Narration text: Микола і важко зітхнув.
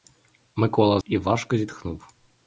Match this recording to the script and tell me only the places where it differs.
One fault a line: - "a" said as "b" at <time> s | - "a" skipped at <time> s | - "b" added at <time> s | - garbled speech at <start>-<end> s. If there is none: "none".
none